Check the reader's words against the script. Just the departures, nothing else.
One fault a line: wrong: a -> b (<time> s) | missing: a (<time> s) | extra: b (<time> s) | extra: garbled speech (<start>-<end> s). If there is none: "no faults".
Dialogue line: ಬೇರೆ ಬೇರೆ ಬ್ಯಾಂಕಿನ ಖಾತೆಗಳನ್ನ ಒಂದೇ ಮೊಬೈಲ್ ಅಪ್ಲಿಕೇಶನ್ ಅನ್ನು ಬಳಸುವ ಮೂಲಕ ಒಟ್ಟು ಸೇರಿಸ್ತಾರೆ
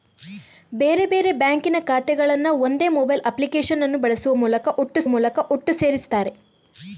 extra: ಮೂಲಕ ಒಟ್ಟು (5.1 s)